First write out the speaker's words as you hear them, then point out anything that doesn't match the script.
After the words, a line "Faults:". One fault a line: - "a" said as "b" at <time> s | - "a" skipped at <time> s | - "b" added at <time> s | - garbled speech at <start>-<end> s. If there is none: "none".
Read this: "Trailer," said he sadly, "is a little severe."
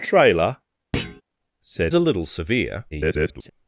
"Trailer," said a little severe." [garbled]
Faults:
- "he sadly is" skipped at 1.9 s
- garbled speech at 2.9-3.5 s